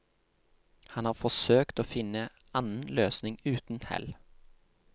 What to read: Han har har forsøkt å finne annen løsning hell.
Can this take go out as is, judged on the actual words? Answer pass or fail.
fail